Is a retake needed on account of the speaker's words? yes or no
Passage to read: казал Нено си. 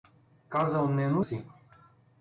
no